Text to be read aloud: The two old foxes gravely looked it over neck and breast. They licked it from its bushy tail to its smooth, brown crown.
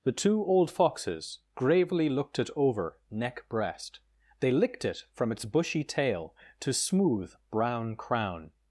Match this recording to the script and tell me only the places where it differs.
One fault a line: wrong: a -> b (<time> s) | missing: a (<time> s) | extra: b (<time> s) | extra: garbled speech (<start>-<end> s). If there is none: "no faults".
missing: and (3.5 s)
missing: its (6.7 s)